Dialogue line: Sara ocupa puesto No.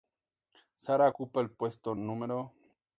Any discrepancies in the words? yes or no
yes